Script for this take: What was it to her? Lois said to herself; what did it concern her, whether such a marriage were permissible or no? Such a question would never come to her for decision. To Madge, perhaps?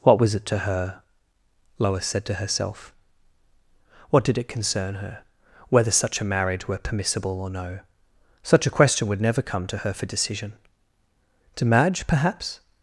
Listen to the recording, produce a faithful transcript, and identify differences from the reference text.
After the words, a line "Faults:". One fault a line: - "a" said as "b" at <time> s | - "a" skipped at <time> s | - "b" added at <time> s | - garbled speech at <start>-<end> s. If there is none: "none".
What was it to her? Lois said to herself; what did it concern her, whether such a marriage were permissible or no? Such a question would never come to her for decision. To Madge, perhaps?
Faults:
none